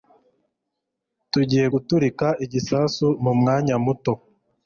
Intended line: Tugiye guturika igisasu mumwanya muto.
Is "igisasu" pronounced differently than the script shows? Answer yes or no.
no